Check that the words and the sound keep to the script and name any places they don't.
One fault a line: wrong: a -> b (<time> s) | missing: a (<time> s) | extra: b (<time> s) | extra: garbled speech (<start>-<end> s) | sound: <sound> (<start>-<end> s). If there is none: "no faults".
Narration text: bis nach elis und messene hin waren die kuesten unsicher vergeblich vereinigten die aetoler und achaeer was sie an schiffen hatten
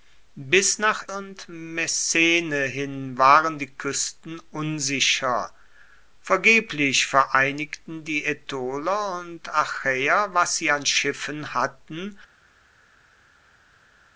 missing: elis (1.1 s)